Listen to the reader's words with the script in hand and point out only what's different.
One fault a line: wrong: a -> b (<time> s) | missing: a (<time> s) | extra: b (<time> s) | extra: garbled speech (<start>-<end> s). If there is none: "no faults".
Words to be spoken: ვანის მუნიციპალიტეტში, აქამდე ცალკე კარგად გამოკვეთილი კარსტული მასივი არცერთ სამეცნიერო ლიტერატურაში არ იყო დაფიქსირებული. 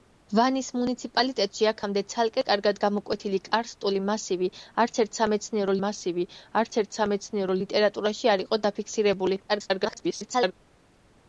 extra: მასივი არცერთ სამეცნიერო (5.9 s)
extra: garbled speech (9.5-10.5 s)